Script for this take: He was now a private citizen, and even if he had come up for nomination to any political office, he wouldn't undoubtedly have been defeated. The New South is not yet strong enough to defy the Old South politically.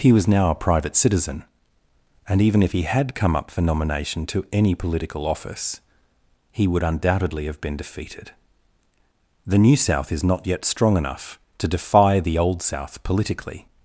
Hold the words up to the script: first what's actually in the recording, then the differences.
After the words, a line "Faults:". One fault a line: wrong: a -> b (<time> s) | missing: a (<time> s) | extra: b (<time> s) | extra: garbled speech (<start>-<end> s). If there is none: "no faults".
He was now a private citizen, and even if he had come up for nomination to any political office, he would undoubtedly have been defeated. The New South is not yet strong enough to defy the Old South politically.
Faults:
wrong: wouldn't -> would (6.7 s)